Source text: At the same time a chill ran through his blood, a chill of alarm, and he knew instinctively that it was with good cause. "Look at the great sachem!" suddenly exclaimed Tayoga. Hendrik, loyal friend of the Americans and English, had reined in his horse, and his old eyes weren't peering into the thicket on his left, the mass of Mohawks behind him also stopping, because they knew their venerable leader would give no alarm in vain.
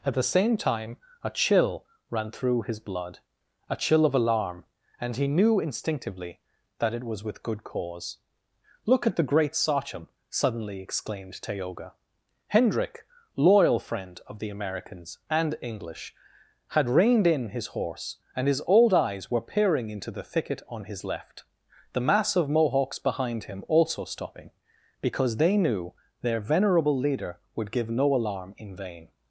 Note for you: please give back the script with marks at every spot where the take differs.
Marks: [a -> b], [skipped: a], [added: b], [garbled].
At the same time a chill ran through his blood, a chill of alarm, and he knew instinctively that it was with good cause. "Look at the great sachem!" suddenly exclaimed Tayoga. Hendrik, loyal friend of the Americans and English, had reined in his horse, and his old eyes [weren't -> were] peering into the thicket on his left, the mass of Mohawks behind him also stopping, because they knew their venerable leader would give no alarm in vain.